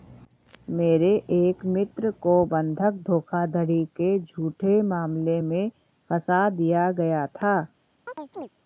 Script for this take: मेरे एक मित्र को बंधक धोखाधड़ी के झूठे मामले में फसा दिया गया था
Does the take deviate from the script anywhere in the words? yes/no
no